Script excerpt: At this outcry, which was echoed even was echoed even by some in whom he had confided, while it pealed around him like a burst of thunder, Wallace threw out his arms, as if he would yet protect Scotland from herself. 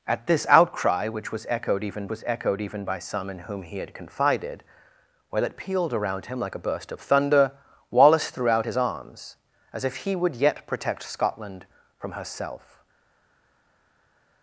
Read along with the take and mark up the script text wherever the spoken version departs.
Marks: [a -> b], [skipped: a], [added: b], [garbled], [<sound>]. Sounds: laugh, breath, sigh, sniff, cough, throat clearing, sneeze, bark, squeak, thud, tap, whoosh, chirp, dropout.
At this outcry, which was echoed even was echoed even by some in whom he had confided, while it pealed around him like a burst of thunder, Wallace threw out his arms, as if he would yet protect Scotland from herself.